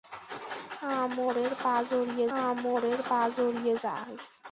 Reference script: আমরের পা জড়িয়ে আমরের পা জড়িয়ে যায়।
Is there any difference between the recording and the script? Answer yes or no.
no